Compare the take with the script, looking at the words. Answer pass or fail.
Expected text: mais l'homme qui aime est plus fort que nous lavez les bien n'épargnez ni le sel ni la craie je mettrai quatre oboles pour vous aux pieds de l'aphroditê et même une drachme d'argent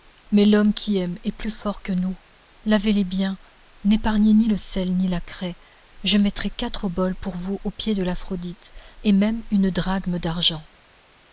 pass